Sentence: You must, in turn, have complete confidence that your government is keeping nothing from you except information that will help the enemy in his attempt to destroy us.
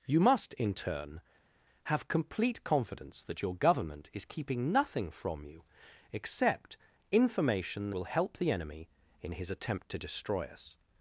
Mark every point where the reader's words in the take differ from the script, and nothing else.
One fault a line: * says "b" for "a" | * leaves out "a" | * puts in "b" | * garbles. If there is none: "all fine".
* leaves out "that"